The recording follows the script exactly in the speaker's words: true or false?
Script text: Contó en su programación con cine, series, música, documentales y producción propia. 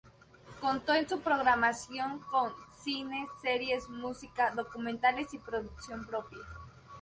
true